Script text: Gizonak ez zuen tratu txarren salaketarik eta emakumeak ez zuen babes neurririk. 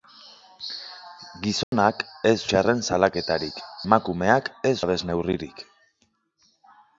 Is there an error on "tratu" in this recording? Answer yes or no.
yes